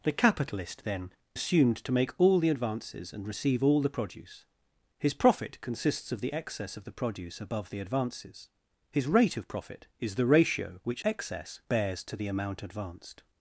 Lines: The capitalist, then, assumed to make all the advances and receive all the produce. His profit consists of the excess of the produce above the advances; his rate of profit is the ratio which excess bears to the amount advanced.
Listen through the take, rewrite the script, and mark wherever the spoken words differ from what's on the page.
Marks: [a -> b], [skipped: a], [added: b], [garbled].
The capitalist, then, assumed to make all the advances and receive all the produce. His profit consists of the excess of the produce above the advances; his rate of profit is the ratio which excess bears to the amount advanced.